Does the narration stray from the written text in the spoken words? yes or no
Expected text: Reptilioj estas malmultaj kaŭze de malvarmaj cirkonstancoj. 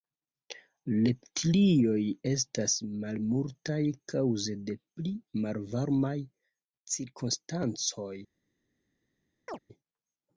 yes